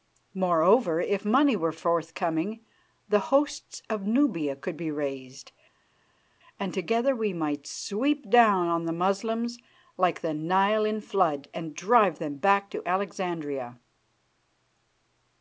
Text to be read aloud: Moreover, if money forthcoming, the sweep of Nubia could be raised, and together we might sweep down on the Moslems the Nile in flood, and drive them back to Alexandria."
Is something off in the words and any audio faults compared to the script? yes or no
yes